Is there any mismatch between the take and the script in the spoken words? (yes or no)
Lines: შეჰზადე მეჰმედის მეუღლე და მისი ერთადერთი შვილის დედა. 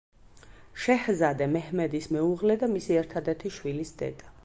no